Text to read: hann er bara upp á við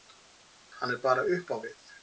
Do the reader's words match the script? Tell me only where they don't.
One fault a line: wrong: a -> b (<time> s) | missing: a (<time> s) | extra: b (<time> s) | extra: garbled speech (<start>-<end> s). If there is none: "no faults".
no faults